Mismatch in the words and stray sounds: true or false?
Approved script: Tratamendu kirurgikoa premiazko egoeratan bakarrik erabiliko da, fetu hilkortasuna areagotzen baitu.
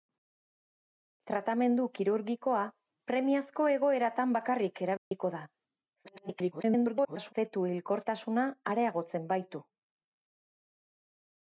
true